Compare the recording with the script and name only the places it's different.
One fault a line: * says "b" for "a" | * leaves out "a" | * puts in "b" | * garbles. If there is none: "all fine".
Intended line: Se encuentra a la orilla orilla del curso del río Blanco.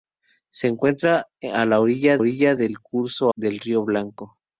all fine